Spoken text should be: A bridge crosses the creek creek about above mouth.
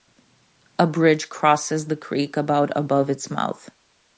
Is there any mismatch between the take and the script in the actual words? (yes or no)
yes